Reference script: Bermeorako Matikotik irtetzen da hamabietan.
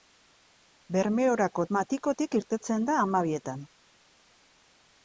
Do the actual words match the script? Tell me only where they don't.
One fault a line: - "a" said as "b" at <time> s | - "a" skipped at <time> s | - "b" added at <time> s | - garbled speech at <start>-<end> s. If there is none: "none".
none